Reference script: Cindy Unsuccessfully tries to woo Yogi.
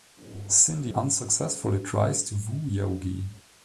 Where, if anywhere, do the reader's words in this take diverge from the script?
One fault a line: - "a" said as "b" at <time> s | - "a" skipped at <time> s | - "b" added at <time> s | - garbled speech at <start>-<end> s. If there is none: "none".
none